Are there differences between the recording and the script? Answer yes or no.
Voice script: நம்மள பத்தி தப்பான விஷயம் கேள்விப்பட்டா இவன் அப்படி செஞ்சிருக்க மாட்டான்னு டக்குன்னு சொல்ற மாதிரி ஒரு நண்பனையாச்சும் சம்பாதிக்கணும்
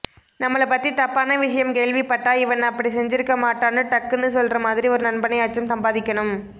no